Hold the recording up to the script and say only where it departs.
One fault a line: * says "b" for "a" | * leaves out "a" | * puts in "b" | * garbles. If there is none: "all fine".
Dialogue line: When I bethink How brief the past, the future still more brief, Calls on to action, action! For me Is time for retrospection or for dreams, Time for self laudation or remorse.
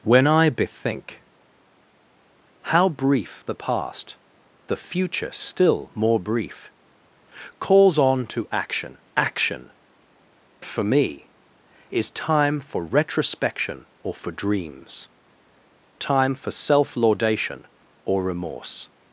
all fine